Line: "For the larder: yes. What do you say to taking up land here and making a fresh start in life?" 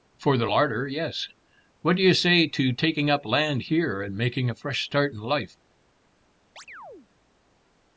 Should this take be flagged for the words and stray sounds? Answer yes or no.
yes